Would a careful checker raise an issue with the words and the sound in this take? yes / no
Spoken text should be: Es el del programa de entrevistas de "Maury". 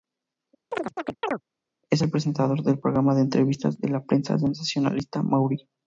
yes